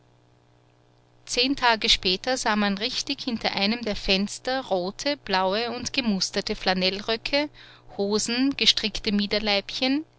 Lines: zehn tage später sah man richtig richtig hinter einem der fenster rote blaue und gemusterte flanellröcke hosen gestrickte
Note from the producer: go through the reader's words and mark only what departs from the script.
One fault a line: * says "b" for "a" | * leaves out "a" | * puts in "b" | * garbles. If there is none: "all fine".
* leaves out "richtig"